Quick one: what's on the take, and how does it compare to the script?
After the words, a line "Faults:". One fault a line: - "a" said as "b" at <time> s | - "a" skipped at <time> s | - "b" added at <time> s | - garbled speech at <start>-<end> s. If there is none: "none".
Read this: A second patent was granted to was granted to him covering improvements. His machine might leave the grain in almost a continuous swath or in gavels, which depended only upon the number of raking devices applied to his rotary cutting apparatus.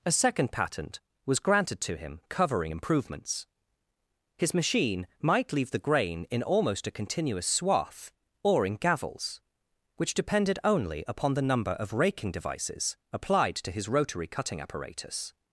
A second patent was granted to him covering improvements. His machine might leave the grain in almost a continuous swath or in gavels, which depended only upon the number of raking devices applied to his rotary cutting apparatus.
Faults:
- "was granted to" skipped at 1.9 s